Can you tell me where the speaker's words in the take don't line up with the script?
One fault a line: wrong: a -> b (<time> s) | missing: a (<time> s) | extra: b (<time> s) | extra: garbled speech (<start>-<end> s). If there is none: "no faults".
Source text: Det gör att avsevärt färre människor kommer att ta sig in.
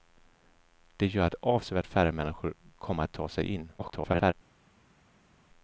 extra: garbled speech (3.8-4.3 s)